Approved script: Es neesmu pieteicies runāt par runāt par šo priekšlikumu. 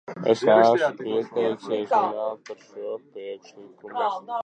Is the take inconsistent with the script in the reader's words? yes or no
yes